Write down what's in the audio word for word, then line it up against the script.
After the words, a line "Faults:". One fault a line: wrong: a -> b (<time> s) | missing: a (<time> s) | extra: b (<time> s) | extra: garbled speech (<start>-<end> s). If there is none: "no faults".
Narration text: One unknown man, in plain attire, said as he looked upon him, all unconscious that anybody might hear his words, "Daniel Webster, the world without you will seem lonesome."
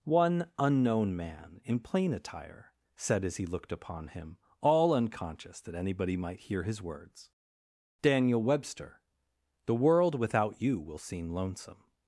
One unknown man, in plain attire, said as he looked upon him, all unconscious that anybody might hear his words, "Daniel Webster, the world without you will seem lonesome."
Faults:
no faults